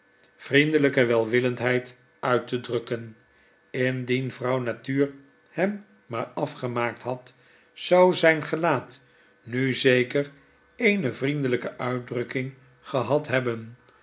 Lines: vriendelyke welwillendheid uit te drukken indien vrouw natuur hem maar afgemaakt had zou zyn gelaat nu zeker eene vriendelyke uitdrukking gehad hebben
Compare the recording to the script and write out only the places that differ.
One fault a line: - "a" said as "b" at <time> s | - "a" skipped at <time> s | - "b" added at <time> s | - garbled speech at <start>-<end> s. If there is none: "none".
none